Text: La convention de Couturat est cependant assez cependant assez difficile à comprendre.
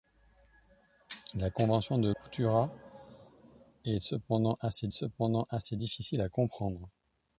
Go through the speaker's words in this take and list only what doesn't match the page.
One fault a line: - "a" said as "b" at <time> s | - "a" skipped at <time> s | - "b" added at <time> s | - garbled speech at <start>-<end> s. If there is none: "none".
none